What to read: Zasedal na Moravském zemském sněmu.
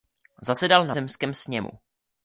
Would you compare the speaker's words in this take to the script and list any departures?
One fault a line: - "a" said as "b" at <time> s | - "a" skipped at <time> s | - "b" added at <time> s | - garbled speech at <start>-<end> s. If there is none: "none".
- "Moravském" skipped at 0.9 s